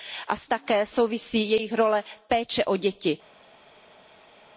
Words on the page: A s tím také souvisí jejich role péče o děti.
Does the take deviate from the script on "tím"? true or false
true